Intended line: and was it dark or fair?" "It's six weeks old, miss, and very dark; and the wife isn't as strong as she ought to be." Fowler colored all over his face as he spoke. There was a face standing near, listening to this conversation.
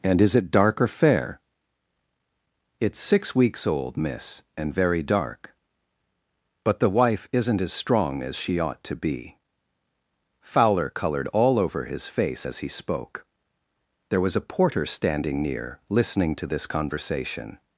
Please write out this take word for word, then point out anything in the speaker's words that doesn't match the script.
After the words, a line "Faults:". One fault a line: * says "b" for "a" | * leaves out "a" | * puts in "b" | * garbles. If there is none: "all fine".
and is it dark or fair?" "It's six weeks old, miss, and very dark; but the wife isn't as strong as she ought to be." Fowler colored all over his face as he spoke. There was a porter standing near, listening to this conversation.
Faults:
* says "is" for "was"
* says "but" for "and"
* says "porter" for "face"